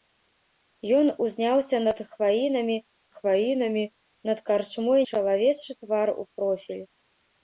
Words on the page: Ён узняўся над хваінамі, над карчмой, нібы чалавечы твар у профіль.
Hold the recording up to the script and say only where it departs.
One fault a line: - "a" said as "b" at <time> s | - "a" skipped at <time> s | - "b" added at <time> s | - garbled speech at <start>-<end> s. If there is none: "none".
- "хваінамі" added at 3.2 s
- "нібы" skipped at 5.0 s